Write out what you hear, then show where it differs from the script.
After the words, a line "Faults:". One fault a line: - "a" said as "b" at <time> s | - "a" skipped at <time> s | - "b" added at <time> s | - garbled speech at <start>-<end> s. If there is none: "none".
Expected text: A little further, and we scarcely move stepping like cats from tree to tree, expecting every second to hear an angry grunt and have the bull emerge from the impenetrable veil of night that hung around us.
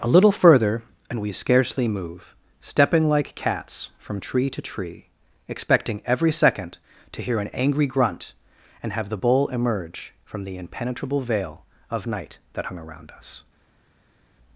A little further, and we scarcely move stepping like cats from tree to tree, expecting every second to hear an angry grunt and have the bull emerge from the impenetrable veil of night that hung around us.
Faults:
none